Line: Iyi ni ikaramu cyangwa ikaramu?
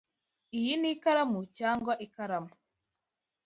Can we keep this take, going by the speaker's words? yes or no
yes